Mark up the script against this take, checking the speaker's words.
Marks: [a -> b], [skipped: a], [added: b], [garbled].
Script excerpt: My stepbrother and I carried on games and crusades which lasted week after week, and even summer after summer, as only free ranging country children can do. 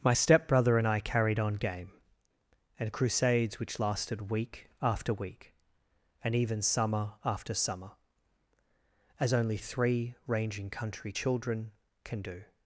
My stepbrother and I carried on [games -> game] and crusades which lasted week after week, and even summer after summer, as only [free -> three] ranging country children can do.